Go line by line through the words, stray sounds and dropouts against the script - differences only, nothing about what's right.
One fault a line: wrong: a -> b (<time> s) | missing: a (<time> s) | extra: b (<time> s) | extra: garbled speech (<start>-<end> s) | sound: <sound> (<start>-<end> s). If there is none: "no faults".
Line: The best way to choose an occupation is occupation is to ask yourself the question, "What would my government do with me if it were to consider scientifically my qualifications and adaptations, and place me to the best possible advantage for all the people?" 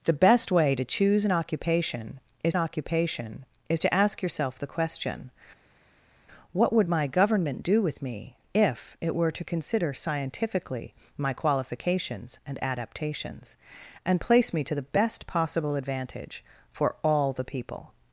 no faults